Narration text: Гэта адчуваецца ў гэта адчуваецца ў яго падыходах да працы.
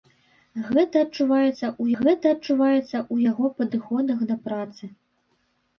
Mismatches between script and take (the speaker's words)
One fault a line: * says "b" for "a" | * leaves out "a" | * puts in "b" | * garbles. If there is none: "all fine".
all fine